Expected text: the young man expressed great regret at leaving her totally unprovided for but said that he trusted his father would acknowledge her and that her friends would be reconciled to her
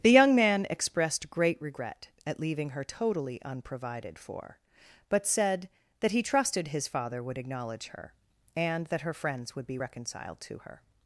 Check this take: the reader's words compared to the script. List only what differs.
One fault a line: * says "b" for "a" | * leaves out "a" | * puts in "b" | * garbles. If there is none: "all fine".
all fine